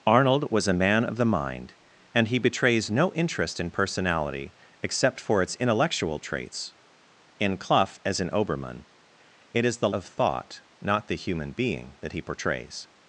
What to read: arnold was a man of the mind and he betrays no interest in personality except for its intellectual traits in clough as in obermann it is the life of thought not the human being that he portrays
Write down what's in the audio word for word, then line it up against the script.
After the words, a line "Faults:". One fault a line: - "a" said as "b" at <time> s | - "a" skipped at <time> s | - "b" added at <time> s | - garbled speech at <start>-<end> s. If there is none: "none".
arnold was a man of the mind and he betrays no interest in personality except for its intellectual traits in clough as in obermann it is the of thought not the human being that he portrays
Faults:
- "life" skipped at 9.9 s